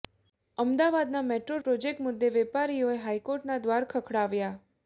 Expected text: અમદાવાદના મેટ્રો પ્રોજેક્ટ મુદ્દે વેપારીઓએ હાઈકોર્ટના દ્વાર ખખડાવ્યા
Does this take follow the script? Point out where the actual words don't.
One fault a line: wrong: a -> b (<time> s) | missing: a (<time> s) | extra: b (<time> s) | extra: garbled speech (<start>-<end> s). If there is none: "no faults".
no faults